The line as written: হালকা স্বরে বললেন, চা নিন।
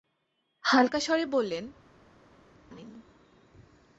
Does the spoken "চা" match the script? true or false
false